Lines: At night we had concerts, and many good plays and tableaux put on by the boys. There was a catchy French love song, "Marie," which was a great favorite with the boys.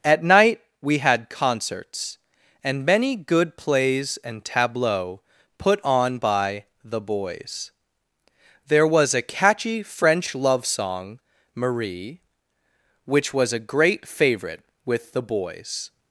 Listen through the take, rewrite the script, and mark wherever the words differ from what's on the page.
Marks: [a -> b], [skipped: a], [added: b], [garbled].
At night we had concerts, and many good plays and tableaux put on by the boys. There was a catchy French love song, "Marie," which was a great favorite with the boys.